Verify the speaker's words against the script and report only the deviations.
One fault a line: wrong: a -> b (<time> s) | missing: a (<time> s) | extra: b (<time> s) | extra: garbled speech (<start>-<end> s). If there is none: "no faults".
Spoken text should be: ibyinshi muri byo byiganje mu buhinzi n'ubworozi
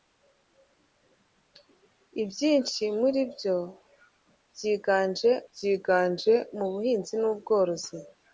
extra: byiganje (5.5 s)